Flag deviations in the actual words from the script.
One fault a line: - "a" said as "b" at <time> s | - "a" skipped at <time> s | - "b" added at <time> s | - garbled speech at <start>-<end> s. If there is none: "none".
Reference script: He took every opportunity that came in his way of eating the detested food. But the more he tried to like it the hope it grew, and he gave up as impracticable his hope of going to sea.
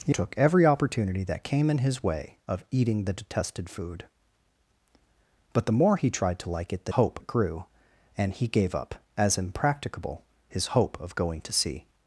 none